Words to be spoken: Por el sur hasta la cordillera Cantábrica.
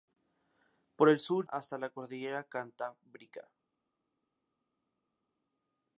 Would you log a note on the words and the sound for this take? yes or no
no